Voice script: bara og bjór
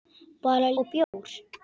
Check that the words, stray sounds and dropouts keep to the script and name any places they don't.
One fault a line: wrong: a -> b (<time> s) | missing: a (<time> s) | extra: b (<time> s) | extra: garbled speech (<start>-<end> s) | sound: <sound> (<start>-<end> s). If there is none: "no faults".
sound: dropout (1.0-1.1 s)